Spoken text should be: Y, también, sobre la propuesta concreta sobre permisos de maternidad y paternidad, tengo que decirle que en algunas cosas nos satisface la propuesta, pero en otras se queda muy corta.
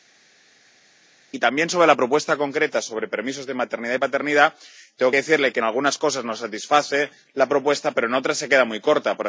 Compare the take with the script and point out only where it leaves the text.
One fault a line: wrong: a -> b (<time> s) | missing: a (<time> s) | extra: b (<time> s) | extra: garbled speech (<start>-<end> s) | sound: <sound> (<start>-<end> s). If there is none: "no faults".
no faults